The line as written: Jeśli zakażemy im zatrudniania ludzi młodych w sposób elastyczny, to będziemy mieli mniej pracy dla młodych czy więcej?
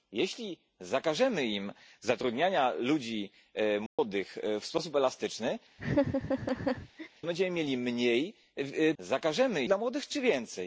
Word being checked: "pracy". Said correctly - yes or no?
no